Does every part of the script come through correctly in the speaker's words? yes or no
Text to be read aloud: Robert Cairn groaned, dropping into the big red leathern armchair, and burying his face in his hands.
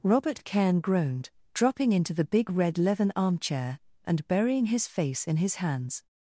yes